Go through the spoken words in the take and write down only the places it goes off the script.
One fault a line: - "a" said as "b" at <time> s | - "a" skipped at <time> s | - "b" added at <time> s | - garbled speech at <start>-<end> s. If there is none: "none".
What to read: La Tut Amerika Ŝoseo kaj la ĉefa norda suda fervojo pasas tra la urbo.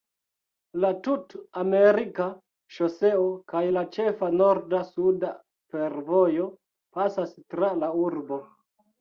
none